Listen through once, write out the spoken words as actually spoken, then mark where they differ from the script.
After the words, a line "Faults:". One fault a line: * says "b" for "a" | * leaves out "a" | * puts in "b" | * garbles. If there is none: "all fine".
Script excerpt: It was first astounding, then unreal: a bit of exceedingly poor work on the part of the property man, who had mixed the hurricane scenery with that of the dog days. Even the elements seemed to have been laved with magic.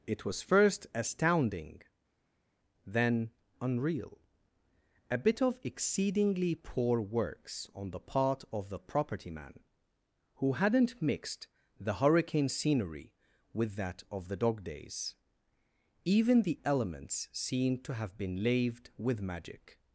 It was first astounding, then unreal: a bit of exceedingly poor works on the part of the property man, who hadn't mixed the hurricane scenery with that of the dog days. Even the elements seemed to have been laved with magic.
Faults:
* says "works" for "work"
* says "hadn't" for "had"